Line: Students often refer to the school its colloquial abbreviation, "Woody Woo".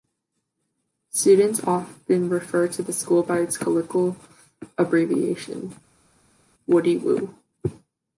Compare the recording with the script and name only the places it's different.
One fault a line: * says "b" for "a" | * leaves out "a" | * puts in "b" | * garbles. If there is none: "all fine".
* puts in "by"